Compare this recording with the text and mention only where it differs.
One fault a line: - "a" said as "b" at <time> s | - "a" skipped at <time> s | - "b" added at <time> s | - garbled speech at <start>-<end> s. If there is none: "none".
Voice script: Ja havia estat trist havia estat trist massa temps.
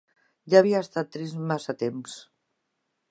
- "havia estat trist" skipped at 1.4 s